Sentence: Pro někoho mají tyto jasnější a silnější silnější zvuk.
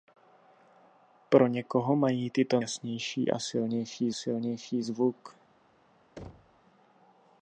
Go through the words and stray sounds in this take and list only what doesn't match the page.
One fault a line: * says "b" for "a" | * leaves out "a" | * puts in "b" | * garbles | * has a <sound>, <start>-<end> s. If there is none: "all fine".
* has a thud, 6.2-6.6 s